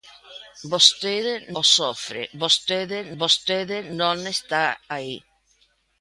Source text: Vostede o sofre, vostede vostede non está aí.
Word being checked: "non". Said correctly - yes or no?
yes